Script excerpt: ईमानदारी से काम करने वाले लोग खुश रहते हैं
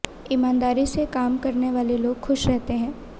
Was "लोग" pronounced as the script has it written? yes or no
yes